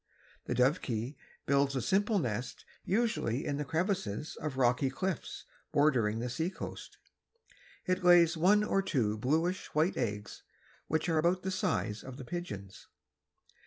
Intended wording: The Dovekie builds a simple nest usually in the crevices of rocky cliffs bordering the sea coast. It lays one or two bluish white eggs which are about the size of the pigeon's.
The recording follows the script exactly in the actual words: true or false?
true